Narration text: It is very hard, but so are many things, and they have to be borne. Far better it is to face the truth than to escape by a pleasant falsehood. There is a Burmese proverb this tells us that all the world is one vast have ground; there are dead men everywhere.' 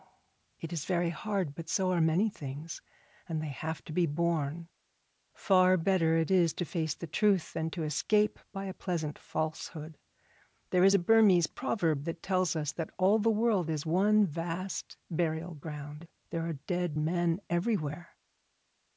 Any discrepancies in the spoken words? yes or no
yes